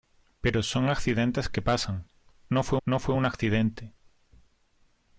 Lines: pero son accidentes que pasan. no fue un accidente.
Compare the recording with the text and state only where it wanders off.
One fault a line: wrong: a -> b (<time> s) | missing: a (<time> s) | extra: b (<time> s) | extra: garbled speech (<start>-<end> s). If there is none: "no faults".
extra: no fue (2.8 s)